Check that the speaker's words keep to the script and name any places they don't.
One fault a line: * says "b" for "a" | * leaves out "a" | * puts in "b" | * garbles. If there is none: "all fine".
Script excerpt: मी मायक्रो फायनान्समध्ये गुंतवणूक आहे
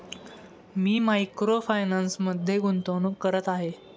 * puts in "करत"